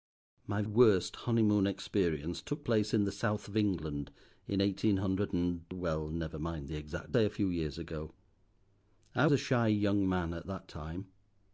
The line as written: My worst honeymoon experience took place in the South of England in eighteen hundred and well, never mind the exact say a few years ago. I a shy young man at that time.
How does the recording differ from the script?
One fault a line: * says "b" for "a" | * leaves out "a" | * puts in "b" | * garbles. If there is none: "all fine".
all fine